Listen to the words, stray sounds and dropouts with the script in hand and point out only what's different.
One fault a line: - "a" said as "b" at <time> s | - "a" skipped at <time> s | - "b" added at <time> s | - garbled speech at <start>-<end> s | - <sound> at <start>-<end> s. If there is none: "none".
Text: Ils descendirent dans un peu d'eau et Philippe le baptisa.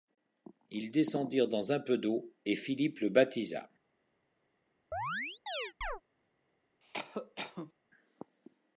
- chirp at 4.9-6.0 s
- cough at 6.8-7.7 s